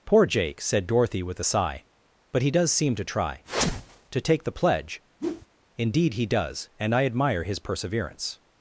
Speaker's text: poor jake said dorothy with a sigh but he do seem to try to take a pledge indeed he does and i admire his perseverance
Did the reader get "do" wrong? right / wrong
wrong